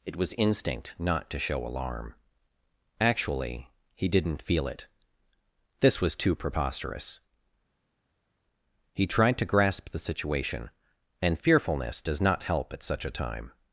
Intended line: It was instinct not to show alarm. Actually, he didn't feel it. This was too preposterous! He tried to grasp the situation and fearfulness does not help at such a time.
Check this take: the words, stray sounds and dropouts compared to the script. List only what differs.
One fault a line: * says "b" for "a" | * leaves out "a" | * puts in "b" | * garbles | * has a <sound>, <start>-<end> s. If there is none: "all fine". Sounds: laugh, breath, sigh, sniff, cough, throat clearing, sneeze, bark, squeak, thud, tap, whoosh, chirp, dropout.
all fine